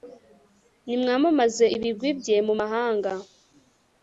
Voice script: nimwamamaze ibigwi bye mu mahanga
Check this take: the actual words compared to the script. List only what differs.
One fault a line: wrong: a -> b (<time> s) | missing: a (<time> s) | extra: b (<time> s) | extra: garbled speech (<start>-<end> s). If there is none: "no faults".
no faults